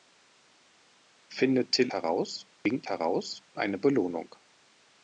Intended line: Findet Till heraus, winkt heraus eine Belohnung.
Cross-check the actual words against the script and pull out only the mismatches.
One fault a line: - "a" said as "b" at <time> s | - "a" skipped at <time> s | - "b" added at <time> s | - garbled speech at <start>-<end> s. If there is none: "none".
none